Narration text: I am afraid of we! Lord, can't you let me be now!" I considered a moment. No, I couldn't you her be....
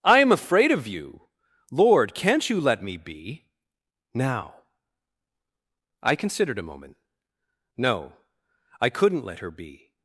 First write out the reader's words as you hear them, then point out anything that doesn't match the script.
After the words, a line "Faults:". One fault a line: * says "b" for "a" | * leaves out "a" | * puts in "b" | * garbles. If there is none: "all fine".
I am afraid of you! Lord, can't you let me be now!" I considered a moment. No, I couldn't let her be....
Faults:
* says "you" for "we"
* says "let" for "you"